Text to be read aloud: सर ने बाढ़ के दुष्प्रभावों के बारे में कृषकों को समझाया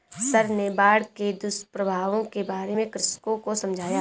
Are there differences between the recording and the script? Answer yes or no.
no